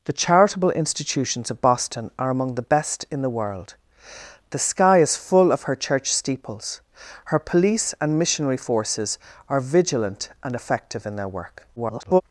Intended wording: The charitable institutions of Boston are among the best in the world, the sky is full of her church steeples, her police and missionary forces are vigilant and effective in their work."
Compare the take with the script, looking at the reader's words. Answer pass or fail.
fail